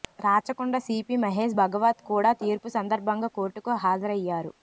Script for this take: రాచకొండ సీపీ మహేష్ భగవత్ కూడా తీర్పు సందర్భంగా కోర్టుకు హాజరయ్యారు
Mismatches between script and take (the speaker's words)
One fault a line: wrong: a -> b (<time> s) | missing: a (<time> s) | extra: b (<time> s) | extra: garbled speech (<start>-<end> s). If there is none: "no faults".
no faults